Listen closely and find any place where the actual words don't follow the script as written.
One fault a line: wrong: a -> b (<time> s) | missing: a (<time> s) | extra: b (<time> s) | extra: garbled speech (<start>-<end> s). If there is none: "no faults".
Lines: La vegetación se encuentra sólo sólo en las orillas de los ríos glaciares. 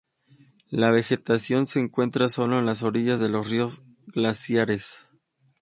missing: sólo (2.6 s)